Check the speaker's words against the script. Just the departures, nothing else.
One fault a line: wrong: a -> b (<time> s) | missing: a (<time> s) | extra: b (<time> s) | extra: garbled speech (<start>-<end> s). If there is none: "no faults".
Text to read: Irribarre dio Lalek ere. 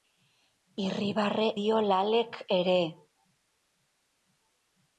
no faults